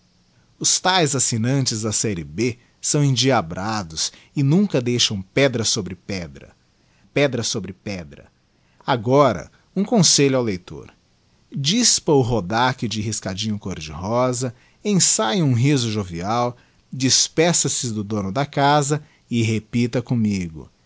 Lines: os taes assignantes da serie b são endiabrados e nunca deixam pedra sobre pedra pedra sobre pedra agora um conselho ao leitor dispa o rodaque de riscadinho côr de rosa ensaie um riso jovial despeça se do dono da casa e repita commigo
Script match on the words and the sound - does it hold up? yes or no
yes